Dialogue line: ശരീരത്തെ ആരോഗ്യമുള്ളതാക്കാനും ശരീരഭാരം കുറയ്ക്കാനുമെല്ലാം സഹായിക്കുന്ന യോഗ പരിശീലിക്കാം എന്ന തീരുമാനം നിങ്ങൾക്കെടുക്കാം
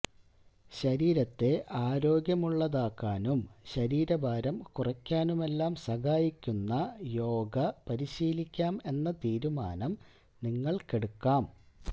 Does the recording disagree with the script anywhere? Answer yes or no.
no